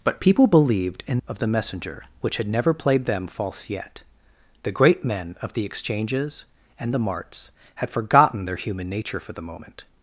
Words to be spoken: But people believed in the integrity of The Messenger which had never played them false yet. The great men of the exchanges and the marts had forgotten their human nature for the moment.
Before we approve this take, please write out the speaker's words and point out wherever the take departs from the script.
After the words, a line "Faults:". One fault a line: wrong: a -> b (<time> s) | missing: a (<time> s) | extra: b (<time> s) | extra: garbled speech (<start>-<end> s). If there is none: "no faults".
But people believed in of The Messenger which had never played them false yet. The great men of the exchanges and the marts had forgotten their human nature for the moment.
Faults:
missing: the integrity (1.2 s)